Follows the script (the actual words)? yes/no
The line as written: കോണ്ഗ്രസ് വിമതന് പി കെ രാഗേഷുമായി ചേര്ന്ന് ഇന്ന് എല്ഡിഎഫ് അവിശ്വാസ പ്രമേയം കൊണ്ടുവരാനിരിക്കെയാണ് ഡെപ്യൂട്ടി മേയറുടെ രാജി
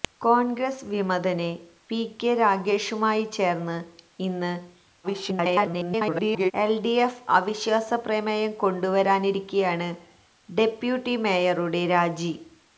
no